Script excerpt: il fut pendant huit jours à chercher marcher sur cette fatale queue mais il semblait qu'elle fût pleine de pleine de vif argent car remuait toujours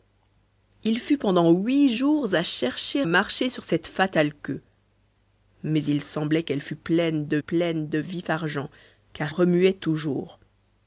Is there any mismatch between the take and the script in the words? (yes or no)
no